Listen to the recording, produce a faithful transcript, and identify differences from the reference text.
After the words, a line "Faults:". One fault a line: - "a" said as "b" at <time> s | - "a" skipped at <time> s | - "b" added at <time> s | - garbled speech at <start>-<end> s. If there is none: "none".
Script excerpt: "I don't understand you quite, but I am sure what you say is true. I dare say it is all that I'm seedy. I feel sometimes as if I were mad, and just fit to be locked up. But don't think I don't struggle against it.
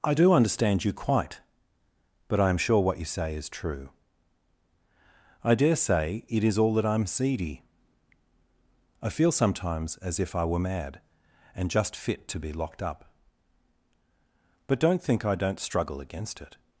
"I do understand you quite, but I am sure what you say is true. I dare say it is all that I'm seedy. I feel sometimes as if I were mad, and just fit to be locked up. But don't think I don't struggle against it.
Faults:
- "don't" said as "do" at 0.1 s